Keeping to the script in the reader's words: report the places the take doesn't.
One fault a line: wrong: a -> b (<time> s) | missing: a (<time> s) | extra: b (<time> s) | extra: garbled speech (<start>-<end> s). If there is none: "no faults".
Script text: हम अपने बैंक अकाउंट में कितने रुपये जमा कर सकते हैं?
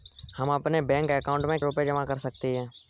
missing: कितने (1.6 s)